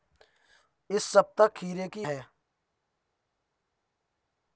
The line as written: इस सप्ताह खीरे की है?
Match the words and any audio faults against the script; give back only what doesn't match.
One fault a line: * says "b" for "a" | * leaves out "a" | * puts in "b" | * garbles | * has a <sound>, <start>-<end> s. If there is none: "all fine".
all fine